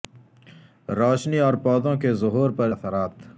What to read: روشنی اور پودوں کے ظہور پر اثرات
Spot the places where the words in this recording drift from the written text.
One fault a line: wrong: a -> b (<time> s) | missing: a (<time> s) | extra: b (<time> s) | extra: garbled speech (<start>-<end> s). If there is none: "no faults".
no faults